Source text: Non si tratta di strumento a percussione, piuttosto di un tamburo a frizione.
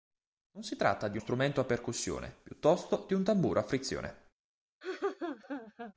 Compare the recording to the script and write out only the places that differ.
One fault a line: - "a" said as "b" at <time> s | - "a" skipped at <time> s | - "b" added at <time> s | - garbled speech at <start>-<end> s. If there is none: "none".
none